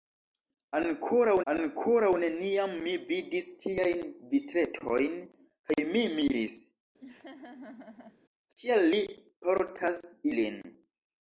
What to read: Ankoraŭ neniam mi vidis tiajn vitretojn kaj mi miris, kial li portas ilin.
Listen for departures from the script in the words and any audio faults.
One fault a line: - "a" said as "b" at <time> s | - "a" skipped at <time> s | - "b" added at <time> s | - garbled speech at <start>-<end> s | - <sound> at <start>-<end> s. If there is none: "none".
- "ankoraŭ" added at 1.5 s
- laugh at 7.0-8.2 s